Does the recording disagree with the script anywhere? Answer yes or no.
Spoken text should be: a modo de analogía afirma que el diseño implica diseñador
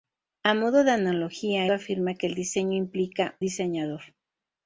no